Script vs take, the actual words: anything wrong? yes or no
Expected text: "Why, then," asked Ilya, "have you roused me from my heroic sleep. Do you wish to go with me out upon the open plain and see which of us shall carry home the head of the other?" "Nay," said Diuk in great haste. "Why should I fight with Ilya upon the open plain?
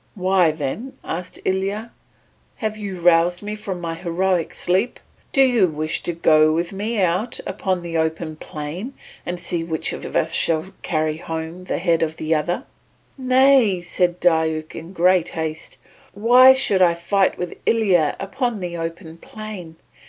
yes